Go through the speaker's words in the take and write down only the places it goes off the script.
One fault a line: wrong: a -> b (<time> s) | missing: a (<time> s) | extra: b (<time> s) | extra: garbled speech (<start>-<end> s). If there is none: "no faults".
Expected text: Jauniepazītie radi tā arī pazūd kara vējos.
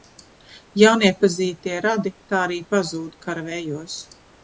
no faults